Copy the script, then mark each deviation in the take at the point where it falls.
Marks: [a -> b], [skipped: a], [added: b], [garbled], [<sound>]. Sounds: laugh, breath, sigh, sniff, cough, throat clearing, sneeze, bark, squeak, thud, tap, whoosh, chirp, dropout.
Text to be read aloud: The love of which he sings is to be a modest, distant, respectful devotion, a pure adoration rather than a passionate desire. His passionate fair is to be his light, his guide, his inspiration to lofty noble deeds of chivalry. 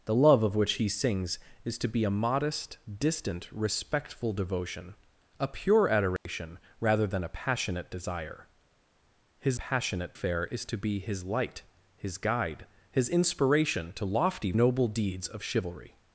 The love of which he sings is to be a modest, distant, respectful devotion, a pure adoration [dropout] rather than a passionate desire. His passionate fair is to be his light, his guide, his inspiration to lofty noble deeds of chivalry.